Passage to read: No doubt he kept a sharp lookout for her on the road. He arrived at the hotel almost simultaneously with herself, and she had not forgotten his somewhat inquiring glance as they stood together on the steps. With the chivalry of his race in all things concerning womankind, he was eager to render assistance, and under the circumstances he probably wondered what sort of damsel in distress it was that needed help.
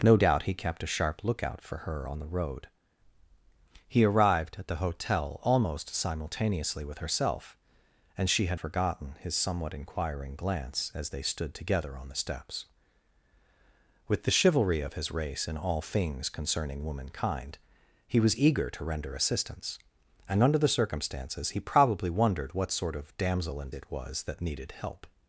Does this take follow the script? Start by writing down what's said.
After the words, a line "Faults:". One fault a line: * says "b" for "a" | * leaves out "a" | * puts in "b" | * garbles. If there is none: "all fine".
No doubt he kept a sharp lookout for her on the road. He arrived at the hotel almost simultaneously with herself, and she had forgotten his somewhat inquiring glance as they stood together on the steps. With the chivalry of his race in all things concerning womankind, he was eager to render assistance, and under the circumstances he probably wondered what sort of damsel in it was that needed help.
Faults:
* leaves out "not"
* leaves out "distress"